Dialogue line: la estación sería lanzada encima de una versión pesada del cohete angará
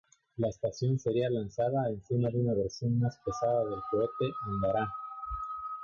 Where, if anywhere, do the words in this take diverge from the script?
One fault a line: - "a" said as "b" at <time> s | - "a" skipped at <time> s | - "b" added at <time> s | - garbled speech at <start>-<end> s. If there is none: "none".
- "más" added at 3.0 s